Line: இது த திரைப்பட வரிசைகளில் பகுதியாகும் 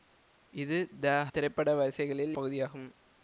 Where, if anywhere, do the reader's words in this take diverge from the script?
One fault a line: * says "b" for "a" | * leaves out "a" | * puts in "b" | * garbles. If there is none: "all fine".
all fine